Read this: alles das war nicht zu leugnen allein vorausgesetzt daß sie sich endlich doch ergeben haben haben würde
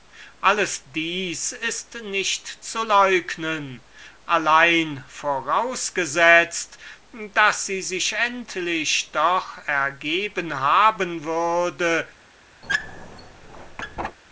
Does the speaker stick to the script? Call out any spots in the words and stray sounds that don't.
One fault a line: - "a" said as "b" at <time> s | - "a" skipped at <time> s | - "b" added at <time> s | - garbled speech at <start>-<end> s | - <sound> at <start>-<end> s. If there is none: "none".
- "war" said as "ist" at 1.5 s
- "haben" skipped at 11.2 s
- squeak at 12.6-14.2 s